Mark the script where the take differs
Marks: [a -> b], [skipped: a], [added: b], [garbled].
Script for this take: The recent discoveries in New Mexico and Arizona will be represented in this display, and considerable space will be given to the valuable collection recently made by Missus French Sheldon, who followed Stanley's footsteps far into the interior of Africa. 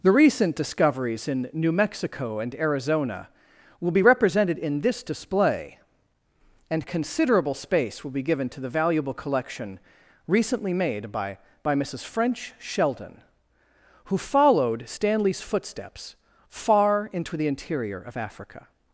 The recent discoveries in New Mexico and Arizona will be represented in this display, and considerable space will be given to the valuable collection recently made by [added: by] Missus French Sheldon, who followed Stanley's footsteps far into the interior of Africa.